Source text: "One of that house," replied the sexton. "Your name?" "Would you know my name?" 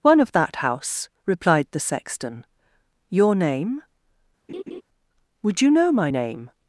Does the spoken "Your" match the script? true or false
true